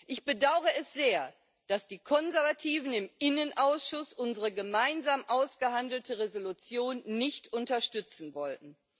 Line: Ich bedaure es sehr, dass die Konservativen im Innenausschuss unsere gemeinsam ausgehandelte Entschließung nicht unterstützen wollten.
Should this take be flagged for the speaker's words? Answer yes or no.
no